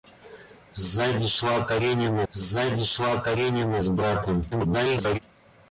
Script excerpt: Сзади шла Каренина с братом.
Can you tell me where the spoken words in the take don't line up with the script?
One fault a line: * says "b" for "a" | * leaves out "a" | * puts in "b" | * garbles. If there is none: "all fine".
* puts in "сзади шла Каренина"
* garbles